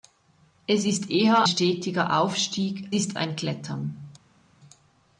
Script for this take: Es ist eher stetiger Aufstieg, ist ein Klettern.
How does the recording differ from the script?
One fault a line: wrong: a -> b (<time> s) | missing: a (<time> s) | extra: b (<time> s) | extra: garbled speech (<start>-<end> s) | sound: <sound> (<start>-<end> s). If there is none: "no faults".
no faults